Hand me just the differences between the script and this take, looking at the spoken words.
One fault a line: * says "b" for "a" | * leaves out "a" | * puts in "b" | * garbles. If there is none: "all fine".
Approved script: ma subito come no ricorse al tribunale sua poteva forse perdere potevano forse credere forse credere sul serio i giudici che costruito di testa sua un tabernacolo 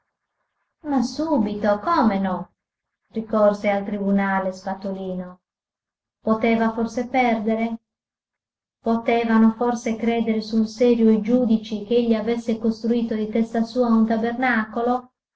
* says "spatolino" for "sua"
* leaves out "forse credere"
* puts in "egli avesse"